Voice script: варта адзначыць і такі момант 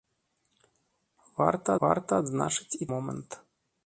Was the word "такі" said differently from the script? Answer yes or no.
yes